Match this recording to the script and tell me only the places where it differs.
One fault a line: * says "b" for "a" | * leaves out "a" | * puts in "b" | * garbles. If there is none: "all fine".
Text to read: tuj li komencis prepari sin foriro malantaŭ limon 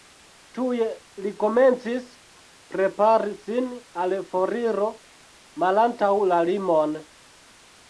* puts in "al"
* puts in "la"